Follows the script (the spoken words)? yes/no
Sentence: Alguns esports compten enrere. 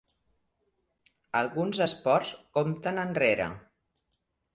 yes